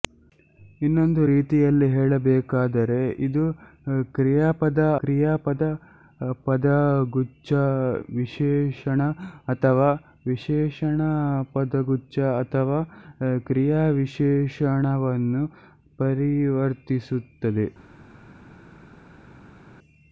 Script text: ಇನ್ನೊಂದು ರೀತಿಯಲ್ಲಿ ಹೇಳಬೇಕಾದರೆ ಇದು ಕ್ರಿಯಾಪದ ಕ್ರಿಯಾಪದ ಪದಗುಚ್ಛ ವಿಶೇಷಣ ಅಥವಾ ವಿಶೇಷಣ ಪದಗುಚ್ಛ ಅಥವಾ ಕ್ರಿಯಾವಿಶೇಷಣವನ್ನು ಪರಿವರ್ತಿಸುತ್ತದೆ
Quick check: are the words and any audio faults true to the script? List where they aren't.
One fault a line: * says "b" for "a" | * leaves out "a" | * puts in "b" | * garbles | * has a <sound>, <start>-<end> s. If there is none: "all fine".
all fine